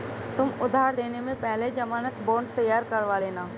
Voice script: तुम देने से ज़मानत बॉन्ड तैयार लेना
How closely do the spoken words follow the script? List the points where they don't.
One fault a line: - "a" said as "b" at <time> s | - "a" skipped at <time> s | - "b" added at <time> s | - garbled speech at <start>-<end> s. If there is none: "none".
- "उधार" added at 0.6 s
- "पहले" added at 1.4 s
- "करवा" added at 2.9 s